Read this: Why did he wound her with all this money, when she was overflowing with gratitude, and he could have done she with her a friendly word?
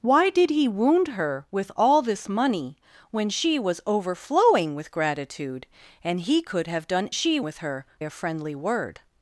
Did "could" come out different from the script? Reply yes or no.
no